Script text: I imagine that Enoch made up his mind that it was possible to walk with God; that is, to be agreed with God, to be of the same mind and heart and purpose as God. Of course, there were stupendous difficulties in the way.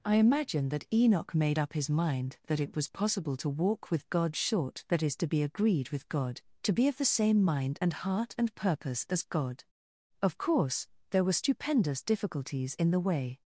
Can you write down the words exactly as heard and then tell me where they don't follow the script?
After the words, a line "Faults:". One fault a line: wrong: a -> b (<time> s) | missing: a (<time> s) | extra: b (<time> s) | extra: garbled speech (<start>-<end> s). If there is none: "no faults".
I imagine that Enoch made up his mind that it was possible to walk with God; short that is, to be agreed with God, to be of the same mind and heart and purpose as God. Of course, there were stupendous difficulties in the way.
Faults:
extra: short (4.4 s)